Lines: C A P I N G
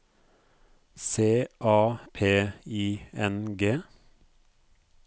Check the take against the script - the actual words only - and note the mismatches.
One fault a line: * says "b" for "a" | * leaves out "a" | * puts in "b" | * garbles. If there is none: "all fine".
all fine